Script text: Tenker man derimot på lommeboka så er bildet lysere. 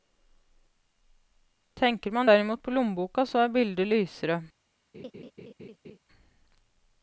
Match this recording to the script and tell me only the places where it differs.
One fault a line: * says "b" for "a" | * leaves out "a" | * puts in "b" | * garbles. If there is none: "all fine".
all fine